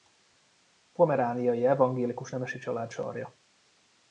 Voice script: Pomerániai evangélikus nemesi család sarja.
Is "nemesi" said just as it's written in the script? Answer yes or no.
yes